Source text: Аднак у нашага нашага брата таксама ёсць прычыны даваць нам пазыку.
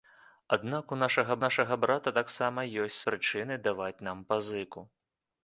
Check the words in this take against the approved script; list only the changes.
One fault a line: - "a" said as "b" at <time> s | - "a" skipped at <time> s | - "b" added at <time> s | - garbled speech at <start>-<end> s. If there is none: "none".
none